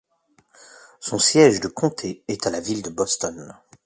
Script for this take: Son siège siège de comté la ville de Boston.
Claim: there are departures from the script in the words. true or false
true